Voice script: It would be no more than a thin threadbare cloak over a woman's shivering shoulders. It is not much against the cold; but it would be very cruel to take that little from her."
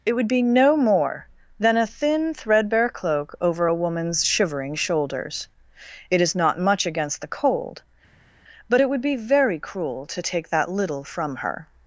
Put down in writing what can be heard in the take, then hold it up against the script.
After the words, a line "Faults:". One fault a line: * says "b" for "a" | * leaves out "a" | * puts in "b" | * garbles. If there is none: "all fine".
It would be no more than a thin threadbare cloak over a woman's shivering shoulders. It is not much against the cold; but it would be very cruel to take that little from her."
Faults:
all fine